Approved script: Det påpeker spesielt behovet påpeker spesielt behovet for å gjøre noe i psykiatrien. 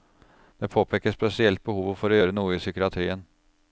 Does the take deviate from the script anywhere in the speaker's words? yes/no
yes